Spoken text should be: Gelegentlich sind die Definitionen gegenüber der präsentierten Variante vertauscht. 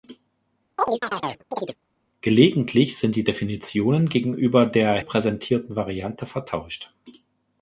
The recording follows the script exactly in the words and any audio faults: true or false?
false